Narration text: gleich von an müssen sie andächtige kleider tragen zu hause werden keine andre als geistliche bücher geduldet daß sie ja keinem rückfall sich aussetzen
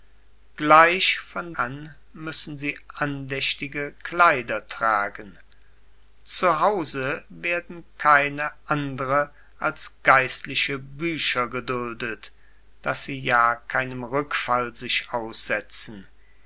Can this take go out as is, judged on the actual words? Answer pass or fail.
pass